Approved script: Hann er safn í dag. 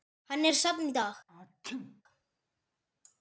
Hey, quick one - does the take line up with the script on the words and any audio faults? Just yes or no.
no